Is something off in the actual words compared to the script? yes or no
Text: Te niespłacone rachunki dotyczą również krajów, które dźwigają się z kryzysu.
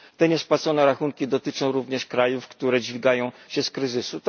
no